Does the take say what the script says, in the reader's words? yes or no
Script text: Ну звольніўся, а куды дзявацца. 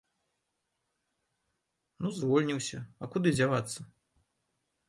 yes